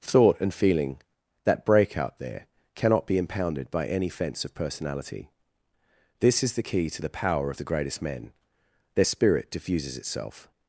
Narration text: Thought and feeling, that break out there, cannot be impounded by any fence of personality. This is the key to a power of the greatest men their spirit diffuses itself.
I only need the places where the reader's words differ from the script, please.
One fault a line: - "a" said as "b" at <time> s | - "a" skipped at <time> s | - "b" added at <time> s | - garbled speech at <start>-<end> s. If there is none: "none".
- "a" said as "the" at 7.0 s